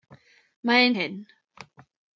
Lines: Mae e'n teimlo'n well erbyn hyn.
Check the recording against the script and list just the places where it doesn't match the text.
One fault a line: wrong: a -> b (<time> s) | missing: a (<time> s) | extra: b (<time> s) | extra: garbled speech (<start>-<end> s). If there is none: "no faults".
missing: teimlo'n well erbyn (0.9 s)